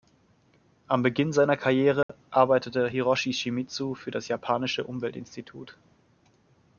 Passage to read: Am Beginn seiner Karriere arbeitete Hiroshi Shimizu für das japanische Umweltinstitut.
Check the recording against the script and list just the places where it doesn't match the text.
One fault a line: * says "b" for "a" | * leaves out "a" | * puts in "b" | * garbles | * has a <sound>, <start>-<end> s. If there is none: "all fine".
* has a dropout, 2.0-2.1 s